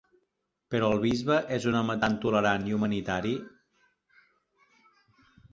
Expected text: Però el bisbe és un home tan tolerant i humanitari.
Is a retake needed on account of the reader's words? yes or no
no